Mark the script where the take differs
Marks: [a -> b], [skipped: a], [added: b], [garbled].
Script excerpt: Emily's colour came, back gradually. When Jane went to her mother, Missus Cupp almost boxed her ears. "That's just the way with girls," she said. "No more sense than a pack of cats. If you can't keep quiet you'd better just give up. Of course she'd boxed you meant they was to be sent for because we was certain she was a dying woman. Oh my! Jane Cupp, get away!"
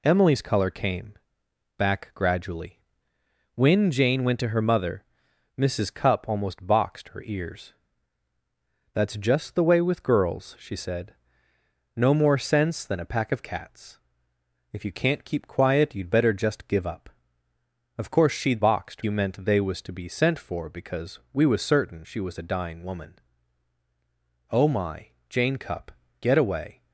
Emily's colour came, back gradually. When Jane went to her mother, Missus Cupp almost boxed her ears. "That's just the way with girls," she said. "No more sense than a pack of cats. If you can't keep quiet you'd better just give up. Of course she'd boxed you meant they was to be sent for because we was certain she was a dying woman. Oh my! Jane Cupp, get away!"